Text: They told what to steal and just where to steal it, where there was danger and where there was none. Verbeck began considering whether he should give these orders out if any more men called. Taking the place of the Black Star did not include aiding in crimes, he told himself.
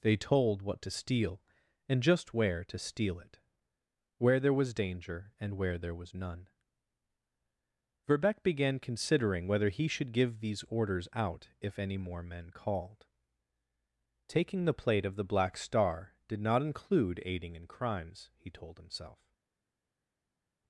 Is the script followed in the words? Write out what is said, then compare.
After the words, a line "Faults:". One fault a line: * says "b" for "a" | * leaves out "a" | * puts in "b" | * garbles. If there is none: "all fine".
They told what to steal and just where to steal it, where there was danger and where there was none. Verbeck began considering whether he should give these orders out if any more men called. Taking the plate of the Black Star did not include aiding in crimes, he told himself.
Faults:
* says "plate" for "place"